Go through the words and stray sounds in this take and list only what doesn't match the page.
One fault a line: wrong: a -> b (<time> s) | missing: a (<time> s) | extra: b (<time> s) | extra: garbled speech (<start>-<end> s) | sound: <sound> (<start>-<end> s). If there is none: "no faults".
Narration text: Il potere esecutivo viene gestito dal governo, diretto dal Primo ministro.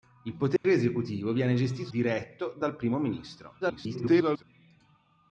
sound: dropout (0.6-0.6 s)
missing: dal governo (1.9 s)
extra: garbled speech (3.6-4.4 s)